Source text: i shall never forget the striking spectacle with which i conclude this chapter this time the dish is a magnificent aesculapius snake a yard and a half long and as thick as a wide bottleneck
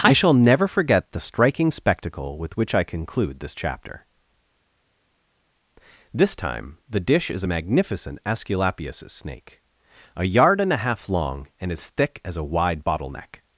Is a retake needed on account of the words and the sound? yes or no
no